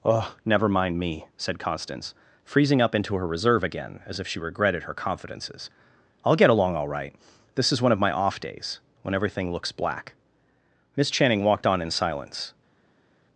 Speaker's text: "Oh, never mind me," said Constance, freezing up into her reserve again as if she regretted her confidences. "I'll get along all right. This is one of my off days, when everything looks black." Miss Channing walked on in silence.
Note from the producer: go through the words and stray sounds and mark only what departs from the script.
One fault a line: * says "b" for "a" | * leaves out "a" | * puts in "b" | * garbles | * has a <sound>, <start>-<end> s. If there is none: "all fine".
all fine